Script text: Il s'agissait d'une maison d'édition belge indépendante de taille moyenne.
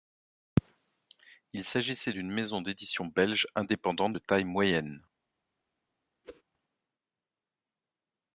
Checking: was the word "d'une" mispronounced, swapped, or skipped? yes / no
no